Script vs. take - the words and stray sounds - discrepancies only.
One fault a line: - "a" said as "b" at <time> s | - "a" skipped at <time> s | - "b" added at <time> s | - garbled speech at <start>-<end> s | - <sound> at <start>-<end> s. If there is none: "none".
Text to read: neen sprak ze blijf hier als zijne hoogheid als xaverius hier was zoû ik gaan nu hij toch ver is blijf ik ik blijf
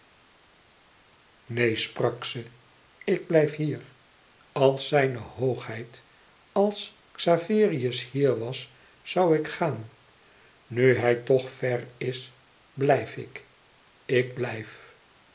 - "ik" added at 3.0 s